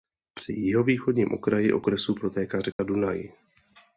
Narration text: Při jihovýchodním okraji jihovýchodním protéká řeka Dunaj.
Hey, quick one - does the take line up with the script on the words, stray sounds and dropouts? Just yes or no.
no